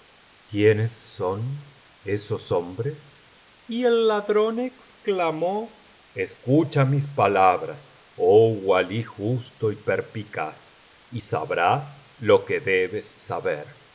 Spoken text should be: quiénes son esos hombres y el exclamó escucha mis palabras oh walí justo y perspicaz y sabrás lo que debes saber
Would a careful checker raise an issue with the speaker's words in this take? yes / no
yes